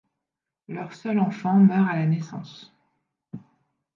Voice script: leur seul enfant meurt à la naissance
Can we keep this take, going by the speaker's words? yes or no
yes